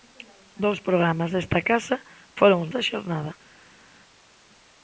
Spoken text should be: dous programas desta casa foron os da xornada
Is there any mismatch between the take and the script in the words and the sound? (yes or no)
no